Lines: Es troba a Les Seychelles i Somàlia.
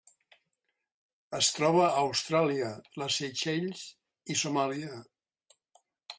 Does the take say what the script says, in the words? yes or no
no